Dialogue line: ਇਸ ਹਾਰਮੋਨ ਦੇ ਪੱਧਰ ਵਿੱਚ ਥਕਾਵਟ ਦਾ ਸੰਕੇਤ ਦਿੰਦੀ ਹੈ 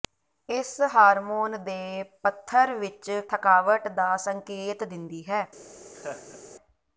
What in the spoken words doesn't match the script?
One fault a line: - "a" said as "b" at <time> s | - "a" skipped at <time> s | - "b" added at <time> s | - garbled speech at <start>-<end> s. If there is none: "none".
none